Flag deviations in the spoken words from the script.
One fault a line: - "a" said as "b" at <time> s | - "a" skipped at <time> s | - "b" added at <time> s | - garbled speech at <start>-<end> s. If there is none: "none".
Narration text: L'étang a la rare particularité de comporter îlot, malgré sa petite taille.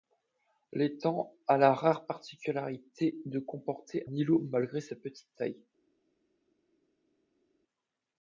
none